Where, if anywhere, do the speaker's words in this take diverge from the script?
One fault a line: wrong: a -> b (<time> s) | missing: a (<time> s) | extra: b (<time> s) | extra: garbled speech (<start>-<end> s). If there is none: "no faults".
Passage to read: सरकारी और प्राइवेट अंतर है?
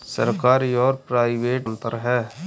no faults